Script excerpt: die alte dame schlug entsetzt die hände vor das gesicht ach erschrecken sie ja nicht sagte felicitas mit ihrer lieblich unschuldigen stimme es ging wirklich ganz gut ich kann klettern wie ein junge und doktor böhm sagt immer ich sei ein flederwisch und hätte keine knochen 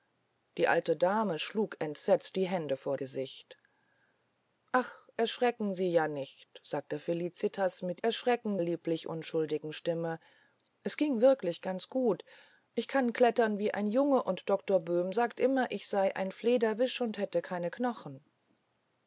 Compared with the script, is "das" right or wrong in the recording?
wrong